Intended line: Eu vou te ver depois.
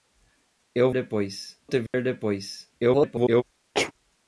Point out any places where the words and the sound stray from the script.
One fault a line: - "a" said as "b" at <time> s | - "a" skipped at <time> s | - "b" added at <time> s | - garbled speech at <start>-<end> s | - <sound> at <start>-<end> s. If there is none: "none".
- "vou" said as "depois" at 0.9 s
- dropout at 1.9-1.9 s
- garbled speech at 2.8-3.4 s
- sneeze at 3.7-3.9 s